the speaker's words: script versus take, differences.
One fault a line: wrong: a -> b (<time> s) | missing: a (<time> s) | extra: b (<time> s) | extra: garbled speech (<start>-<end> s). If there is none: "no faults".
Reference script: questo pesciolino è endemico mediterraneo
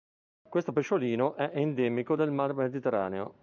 extra: del mar (2.1 s)